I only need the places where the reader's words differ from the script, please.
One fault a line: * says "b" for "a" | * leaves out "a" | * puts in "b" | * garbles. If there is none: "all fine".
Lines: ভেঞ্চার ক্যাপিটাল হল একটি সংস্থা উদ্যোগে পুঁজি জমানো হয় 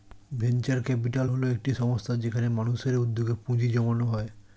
* puts in "যেখানে মানুষের"